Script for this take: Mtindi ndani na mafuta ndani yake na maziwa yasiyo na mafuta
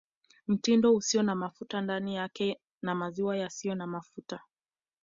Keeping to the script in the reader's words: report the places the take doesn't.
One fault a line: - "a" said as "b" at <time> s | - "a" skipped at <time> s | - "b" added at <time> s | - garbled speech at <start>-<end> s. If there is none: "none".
- "ndani" said as "usio" at 0.9 s